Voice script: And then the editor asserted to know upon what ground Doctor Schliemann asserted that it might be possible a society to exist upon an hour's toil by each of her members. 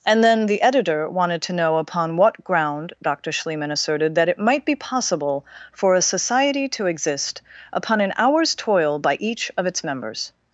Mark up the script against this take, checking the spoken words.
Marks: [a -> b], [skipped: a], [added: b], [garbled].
And then the editor [asserted -> wanted] to know upon what ground Doctor Schliemann asserted that it might be possible [added: for] a society to exist upon an hour's toil by each of [her -> its] members.